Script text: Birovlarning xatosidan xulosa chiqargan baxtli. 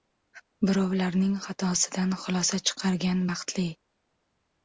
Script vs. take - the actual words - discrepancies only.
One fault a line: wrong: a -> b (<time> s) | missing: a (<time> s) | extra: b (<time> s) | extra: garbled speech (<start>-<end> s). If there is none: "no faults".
no faults